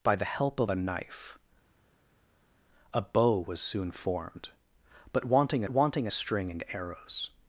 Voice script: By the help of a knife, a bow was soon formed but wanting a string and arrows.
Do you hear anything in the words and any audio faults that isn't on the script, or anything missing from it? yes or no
yes